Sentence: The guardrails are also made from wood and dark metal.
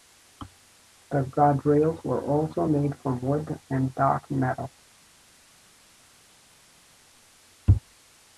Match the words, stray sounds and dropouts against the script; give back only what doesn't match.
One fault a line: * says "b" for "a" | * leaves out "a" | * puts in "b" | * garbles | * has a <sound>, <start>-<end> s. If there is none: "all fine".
* says "were" for "are"